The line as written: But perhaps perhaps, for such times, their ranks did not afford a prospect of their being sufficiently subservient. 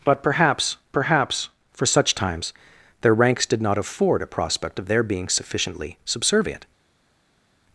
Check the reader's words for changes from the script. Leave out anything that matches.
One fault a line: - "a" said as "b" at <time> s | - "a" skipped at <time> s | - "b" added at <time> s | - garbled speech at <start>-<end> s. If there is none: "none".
none